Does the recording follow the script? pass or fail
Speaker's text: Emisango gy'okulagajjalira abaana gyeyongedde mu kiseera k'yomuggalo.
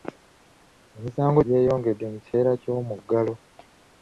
fail